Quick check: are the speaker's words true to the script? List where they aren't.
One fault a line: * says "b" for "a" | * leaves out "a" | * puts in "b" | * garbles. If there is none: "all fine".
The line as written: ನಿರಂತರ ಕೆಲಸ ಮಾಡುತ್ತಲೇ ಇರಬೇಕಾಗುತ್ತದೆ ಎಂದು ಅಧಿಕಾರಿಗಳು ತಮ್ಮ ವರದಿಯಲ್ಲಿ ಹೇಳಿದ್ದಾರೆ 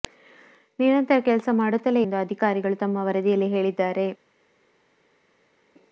* leaves out "ಇರಬೇಕಾಗುತ್ತದೆ"